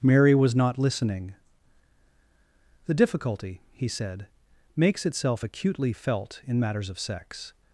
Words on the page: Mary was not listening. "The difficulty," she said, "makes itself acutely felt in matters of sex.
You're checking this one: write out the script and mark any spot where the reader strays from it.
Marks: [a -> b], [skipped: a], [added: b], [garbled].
Mary was not listening. "The difficulty," [she -> he] said, "makes itself acutely felt in matters of sex.